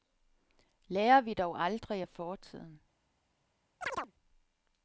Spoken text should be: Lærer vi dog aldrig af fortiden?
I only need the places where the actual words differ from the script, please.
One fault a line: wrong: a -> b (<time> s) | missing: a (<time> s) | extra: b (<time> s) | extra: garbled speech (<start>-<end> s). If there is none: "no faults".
no faults